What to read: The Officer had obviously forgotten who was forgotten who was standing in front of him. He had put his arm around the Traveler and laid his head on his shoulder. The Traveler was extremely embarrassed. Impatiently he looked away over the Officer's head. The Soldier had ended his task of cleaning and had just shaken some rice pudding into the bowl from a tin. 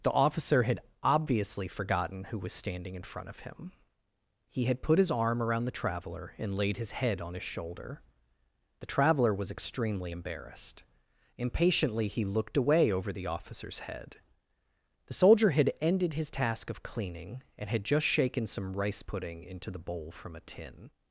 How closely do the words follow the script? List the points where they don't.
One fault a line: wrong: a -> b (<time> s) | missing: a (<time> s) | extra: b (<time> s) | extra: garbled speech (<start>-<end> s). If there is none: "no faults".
missing: forgotten who was (2.5 s)